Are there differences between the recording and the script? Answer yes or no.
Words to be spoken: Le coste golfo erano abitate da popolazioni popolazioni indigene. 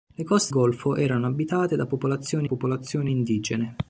no